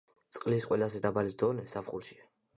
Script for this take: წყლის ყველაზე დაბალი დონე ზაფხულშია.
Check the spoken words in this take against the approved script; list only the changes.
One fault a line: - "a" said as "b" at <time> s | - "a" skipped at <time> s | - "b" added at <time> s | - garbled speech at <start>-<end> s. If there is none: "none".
none